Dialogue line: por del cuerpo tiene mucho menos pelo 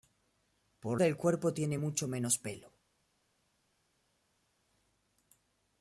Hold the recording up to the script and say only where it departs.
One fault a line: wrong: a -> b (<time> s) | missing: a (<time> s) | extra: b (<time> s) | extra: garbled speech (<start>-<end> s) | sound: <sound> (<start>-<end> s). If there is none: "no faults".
no faults